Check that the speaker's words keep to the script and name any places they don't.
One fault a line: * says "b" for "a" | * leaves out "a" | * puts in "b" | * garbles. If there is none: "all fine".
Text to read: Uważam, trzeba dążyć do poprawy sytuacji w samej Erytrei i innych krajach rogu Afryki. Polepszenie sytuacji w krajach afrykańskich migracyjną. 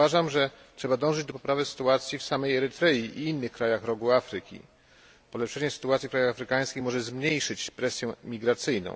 * puts in "że"
* puts in "może zmniejszyć presję"